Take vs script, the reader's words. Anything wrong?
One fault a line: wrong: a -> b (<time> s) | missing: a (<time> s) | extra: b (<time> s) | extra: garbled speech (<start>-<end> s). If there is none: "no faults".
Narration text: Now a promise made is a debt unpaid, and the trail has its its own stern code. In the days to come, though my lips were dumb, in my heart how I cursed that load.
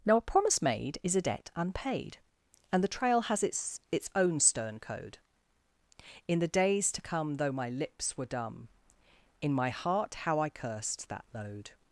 no faults